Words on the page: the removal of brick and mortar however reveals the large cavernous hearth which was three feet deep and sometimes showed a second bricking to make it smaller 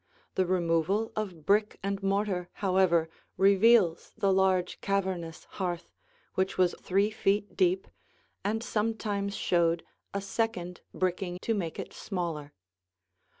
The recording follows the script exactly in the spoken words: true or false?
true